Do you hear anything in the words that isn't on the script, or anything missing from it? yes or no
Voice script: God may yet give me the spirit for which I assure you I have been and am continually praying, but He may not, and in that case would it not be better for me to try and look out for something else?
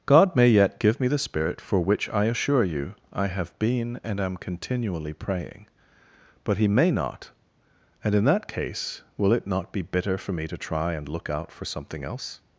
yes